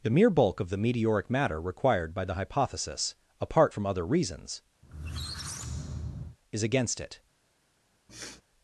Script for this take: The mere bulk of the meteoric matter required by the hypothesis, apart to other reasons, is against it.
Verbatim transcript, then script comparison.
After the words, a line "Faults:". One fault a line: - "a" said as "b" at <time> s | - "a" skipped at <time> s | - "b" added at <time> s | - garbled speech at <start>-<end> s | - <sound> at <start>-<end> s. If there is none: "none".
The mere bulk of the meteoric matter required by the hypothesis, apart from other reasons, is against it.
Faults:
- "to" said as "from" at 3.7 s
- squeak at 4.8-6.4 s
- sniff at 8.1-8.4 s